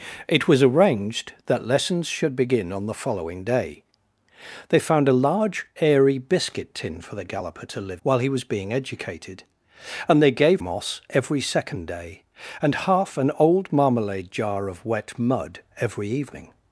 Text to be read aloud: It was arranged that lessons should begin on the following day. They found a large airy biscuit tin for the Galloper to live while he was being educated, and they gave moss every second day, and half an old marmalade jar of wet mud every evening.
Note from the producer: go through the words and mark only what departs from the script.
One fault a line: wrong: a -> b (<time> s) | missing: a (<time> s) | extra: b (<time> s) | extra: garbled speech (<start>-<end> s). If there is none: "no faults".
no faults